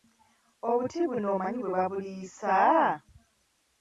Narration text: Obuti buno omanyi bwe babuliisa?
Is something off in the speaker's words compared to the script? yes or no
no